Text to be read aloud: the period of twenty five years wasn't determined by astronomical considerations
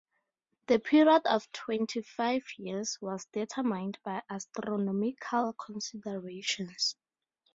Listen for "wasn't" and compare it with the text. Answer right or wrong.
wrong